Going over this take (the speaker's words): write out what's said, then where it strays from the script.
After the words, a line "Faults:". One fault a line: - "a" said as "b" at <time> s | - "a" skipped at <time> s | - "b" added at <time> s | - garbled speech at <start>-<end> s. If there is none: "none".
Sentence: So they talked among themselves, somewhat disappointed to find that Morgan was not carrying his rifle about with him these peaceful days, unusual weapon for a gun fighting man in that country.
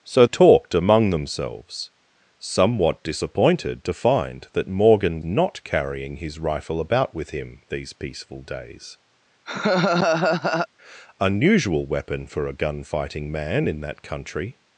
So talked among themselves, somewhat disappointed to find that Morgan not carrying his rifle about with him these peaceful days, unusual weapon for a gun fighting man in that country.
Faults:
- "they" skipped at 0.2 s
- "was" skipped at 5.2 s